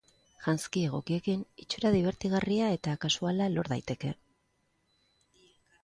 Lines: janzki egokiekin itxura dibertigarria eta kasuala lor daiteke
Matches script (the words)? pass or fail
pass